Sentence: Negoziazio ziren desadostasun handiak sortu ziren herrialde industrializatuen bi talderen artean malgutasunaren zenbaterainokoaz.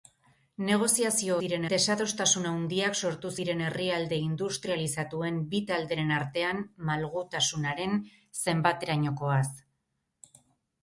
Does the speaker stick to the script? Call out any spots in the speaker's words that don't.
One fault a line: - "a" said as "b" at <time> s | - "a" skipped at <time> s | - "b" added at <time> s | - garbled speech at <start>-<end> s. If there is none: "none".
none